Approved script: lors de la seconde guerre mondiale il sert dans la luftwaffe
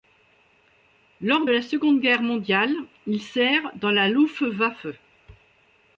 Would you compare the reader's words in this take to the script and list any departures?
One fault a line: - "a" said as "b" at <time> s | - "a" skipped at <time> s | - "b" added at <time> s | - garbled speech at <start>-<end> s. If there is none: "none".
- "de" skipped at 1.4 s